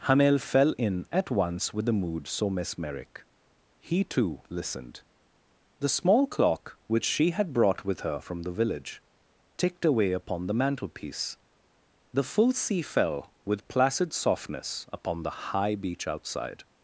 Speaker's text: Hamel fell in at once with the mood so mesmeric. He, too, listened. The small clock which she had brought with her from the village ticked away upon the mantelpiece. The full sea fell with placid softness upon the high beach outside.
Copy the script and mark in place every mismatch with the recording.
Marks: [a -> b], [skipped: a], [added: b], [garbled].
Hamel fell in at once with the mood so mesmeric. He, too, listened. The small clock which she had brought with her from the village ticked away upon the mantelpiece. The full sea fell with placid softness upon the high beach outside.